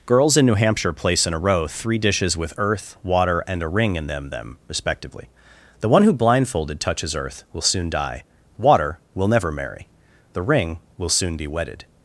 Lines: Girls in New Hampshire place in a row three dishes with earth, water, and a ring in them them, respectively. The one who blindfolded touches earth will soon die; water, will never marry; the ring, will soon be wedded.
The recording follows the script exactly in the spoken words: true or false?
true